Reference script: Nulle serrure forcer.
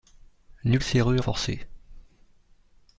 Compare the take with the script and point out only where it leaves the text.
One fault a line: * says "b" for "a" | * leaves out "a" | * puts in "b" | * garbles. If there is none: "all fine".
all fine